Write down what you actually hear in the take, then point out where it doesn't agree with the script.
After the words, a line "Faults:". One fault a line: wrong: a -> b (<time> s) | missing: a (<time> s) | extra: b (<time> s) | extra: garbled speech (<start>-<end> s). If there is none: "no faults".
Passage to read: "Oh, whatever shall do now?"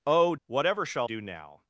"Oh, whatever shall do now?"
Faults:
no faults